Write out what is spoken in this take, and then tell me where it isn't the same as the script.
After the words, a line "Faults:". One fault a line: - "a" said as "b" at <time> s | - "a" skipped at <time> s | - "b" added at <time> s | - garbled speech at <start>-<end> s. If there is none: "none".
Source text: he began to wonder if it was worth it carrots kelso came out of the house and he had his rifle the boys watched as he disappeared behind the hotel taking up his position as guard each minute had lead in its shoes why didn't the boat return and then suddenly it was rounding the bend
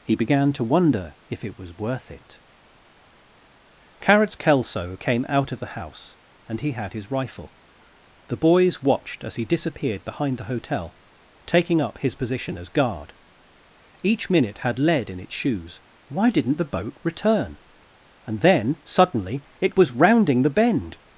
he began to wonder if it was worth it carrots kelso came out of the house and he had his rifle the boys watched as he disappeared behind the hotel taking up his position as guard each minute had lead in its shoes why didn't the boat return and then suddenly it was rounding the bend
Faults:
none